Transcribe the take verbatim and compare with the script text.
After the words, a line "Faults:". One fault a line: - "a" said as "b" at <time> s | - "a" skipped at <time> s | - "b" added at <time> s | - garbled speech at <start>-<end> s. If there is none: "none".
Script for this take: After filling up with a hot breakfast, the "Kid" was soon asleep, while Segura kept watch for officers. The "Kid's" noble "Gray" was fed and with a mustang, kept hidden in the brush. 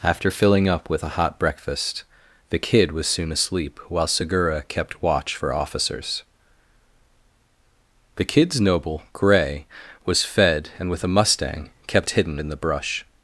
After filling up with a hot breakfast, the "Kid" was soon asleep, while Segura kept watch for officers. The "Kid's" noble "Gray" was fed and with a mustang, kept hidden in the brush.
Faults:
none